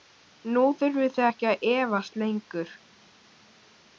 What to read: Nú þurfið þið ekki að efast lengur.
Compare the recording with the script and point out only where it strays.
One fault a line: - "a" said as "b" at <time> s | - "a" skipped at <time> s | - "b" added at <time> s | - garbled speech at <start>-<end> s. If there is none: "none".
none